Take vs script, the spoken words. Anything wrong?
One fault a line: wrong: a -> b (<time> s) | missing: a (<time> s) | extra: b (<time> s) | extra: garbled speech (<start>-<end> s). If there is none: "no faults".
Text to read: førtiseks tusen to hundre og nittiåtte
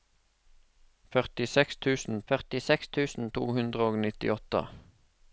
extra: førtiseks tusen (2.3 s)